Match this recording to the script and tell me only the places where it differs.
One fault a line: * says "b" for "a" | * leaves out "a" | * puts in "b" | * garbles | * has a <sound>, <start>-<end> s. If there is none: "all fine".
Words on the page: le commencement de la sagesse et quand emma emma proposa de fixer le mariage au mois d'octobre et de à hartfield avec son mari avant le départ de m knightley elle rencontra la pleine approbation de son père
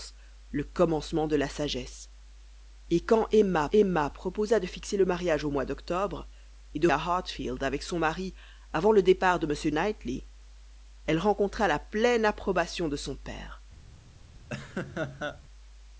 * has a laugh, 14.5-15.4 s